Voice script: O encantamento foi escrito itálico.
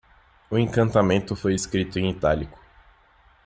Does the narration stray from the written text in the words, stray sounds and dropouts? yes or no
yes